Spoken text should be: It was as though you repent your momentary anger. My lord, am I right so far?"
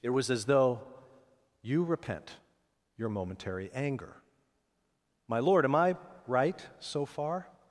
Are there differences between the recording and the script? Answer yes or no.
no